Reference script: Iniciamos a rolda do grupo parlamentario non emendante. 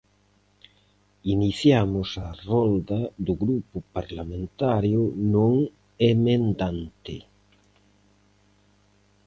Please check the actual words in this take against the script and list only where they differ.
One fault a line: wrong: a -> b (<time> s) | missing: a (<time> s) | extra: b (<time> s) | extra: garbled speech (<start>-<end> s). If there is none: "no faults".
no faults